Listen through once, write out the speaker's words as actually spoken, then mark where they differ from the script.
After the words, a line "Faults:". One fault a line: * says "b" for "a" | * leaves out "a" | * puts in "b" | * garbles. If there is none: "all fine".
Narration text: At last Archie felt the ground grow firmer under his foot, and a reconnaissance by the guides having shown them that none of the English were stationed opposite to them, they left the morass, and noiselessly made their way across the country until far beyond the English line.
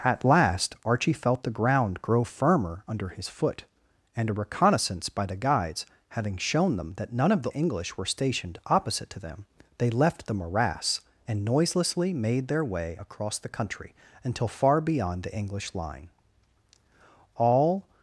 At last Archie felt the ground grow firmer under his foot, and a reconnaissance by the guides having shown them that none of the English were stationed opposite to them, they left the morass, and noiselessly made their way across the country until far beyond the English line. All
Faults:
* puts in "All"